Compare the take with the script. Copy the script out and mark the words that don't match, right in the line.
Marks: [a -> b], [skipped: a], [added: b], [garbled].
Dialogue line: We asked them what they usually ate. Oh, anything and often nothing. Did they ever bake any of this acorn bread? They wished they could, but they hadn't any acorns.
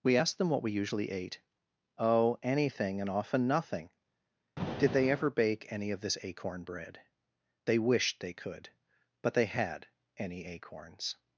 We asked them what [they -> we] usually ate. Oh, anything and often nothing. Did they ever bake any of this acorn bread? They wished they could, but they [hadn't -> had] any acorns.